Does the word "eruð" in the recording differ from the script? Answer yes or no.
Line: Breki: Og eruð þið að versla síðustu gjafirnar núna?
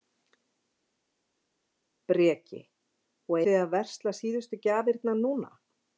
yes